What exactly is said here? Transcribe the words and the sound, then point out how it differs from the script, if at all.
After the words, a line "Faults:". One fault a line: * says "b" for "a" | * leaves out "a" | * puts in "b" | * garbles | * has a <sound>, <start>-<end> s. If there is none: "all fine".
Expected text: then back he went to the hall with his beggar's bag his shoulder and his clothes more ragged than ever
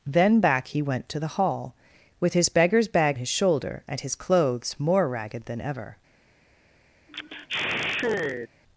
then back he went to the hall with his beggar's bag his shoulder and his clothes more ragged than ever
Faults:
* has a sigh, 7.1-8.5 s